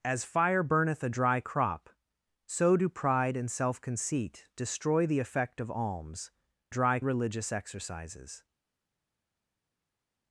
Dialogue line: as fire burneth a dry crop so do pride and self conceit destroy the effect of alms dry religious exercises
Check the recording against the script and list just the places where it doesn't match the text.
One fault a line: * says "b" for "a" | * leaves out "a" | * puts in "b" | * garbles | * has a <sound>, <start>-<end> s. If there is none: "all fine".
all fine